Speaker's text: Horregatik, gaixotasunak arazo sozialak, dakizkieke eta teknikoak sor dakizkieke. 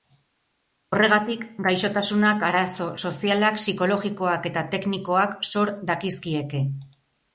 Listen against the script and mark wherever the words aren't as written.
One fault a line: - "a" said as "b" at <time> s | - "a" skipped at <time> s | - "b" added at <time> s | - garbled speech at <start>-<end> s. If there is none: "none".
- "dakizkieke" said as "psikologikoak" at 3.6 s